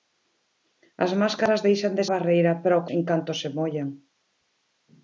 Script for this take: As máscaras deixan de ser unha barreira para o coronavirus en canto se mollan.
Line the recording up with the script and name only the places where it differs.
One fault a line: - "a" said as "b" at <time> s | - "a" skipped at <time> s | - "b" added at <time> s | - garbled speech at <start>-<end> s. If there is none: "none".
- "ser unha" skipped at 2.0 s
- "coronavirus" skipped at 2.9 s